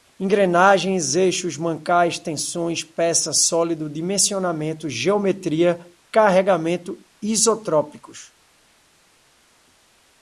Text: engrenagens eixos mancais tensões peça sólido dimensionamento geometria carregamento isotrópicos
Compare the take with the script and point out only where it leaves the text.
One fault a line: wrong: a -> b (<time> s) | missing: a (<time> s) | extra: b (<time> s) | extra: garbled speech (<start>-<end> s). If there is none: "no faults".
no faults